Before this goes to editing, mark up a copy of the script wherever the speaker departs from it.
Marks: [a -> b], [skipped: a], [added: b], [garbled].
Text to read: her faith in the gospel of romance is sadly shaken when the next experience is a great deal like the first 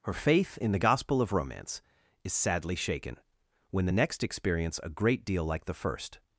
her faith in the gospel of romance is sadly shaken when the next experience [skipped: is] a great deal like the first